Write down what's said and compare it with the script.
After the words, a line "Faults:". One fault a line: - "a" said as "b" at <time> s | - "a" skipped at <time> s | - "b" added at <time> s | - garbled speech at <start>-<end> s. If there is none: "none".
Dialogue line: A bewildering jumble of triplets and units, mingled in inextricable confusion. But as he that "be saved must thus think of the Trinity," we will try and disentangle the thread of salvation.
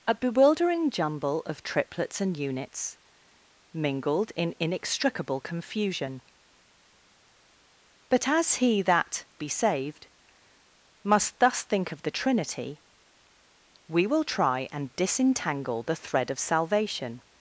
A bewildering jumble of triplets and units, mingled in inextricable confusion. But as he that "be saved must thus think of the Trinity," we will try and disentangle the thread of salvation.
Faults:
none